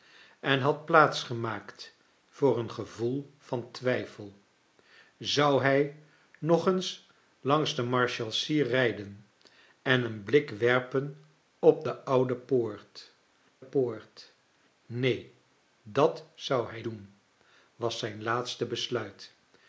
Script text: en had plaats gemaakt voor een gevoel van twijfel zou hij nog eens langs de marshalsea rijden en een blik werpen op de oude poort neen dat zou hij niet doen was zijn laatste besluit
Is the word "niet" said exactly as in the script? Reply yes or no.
no